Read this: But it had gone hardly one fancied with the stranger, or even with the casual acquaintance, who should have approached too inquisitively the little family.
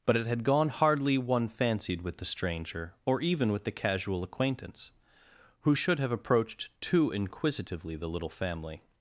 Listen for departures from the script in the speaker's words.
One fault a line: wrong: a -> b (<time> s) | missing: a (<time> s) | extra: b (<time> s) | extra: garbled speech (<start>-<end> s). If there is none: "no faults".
no faults